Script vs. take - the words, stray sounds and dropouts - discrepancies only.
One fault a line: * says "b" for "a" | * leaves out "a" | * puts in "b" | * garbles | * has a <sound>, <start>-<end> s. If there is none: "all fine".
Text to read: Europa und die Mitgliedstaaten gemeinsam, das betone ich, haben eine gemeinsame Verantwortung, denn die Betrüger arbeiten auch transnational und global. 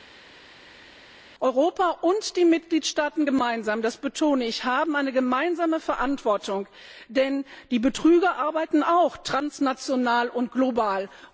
all fine